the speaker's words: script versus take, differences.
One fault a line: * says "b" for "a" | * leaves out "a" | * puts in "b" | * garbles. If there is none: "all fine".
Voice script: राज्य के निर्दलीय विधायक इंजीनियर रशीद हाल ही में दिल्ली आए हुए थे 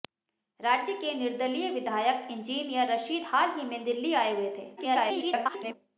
* garbles